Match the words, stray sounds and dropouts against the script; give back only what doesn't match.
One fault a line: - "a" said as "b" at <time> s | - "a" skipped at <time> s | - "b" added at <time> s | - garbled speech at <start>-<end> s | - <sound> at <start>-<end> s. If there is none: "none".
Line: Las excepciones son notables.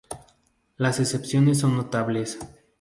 none